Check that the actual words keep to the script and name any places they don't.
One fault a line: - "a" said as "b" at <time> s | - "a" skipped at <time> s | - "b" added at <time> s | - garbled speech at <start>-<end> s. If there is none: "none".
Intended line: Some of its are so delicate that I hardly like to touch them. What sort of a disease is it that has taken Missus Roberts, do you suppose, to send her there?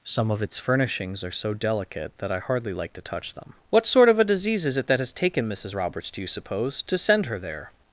- "furnishings" added at 0.6 s